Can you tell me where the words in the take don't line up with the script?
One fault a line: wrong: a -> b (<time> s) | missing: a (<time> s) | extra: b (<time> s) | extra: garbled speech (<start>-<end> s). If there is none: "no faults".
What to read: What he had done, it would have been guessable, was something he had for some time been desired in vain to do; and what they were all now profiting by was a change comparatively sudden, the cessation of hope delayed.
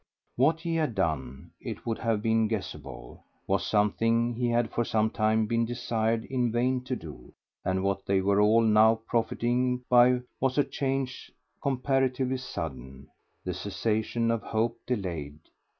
no faults